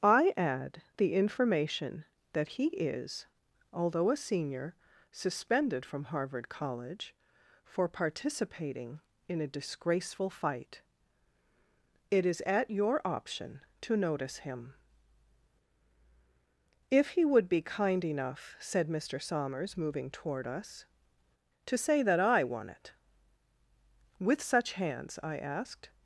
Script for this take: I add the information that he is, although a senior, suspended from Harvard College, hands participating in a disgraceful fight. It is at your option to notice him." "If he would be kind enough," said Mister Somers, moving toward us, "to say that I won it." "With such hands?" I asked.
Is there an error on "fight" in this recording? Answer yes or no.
no